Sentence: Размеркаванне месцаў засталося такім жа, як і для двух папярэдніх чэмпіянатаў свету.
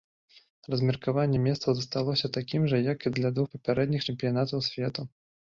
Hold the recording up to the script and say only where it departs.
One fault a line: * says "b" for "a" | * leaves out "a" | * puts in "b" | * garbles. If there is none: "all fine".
all fine